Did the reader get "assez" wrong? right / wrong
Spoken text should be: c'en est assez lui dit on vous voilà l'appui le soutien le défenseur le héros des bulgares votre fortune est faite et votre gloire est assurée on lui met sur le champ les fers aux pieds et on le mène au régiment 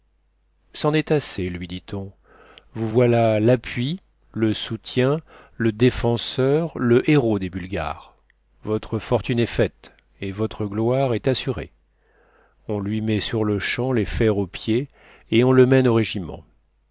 right